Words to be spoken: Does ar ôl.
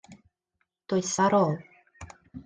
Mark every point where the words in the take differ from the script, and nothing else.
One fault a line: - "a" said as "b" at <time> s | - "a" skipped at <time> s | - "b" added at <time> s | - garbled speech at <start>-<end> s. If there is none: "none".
none